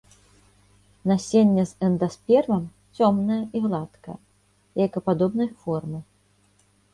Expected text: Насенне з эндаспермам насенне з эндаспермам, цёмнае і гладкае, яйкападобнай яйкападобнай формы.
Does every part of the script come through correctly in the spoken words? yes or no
no